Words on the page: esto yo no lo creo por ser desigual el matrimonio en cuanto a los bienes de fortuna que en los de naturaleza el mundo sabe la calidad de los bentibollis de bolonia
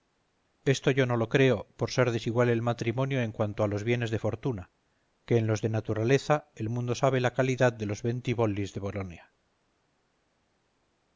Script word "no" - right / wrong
right